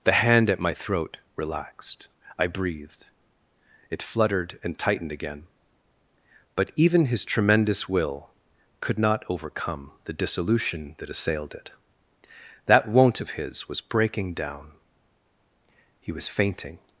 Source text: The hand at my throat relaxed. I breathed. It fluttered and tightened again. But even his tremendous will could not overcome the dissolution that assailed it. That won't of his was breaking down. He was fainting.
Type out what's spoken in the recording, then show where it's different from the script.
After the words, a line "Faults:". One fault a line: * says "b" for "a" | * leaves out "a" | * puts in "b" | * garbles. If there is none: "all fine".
The hand at my throat relaxed. I breathed. It fluttered and tightened again. But even his tremendous will could not overcome the dissolution that assailed it. That won't of his was breaking down. He was fainting.
Faults:
all fine